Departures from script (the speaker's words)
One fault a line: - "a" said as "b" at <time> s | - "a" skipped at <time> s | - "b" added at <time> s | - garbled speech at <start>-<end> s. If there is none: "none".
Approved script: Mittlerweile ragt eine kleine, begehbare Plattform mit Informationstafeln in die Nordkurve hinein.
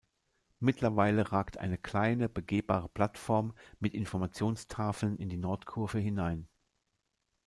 none